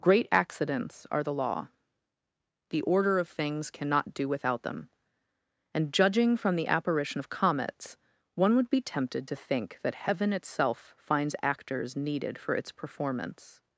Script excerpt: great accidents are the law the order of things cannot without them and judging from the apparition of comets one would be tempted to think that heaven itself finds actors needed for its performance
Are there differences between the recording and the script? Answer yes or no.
yes